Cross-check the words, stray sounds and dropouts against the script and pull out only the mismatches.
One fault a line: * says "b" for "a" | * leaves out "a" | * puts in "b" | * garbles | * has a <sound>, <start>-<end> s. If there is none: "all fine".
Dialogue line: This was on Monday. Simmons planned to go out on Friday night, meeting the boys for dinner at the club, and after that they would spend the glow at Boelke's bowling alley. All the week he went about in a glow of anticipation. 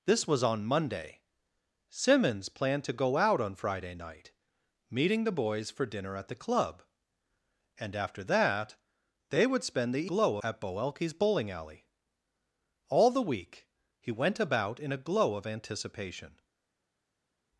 all fine